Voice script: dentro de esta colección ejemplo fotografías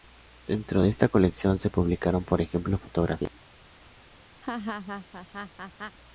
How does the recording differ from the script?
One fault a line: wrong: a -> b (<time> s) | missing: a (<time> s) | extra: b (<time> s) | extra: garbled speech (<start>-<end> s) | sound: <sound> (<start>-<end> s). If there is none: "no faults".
extra: se publicaron por (1.6 s)
sound: laugh (4.4-6.0 s)